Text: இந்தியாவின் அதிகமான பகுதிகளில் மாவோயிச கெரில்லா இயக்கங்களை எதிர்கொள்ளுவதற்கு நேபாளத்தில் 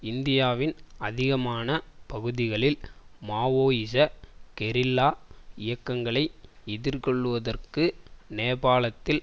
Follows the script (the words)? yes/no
yes